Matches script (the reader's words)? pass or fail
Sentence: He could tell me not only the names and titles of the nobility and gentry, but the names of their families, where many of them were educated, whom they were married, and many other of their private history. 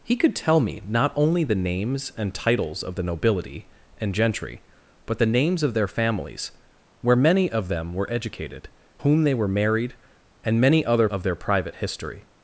pass